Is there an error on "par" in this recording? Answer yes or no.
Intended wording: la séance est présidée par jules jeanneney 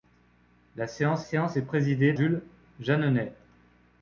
yes